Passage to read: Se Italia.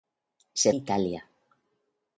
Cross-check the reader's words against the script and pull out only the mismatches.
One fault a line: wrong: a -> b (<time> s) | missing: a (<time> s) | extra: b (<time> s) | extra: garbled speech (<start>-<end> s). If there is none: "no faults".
no faults